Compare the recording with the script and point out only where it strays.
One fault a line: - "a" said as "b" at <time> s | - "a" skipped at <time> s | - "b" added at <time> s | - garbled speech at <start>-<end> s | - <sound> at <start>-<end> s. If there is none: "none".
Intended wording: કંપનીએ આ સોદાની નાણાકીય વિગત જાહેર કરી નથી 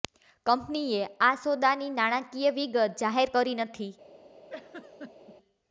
- laugh at 4.5-5.4 s